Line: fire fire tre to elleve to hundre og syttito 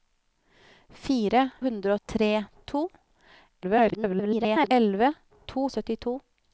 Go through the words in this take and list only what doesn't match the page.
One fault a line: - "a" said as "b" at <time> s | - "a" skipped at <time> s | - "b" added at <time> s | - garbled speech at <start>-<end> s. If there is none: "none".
- "fire" said as "hundre" at 1.7 s
- garbled speech at 3.6-4.7 s
- "hundre" skipped at 5.7 s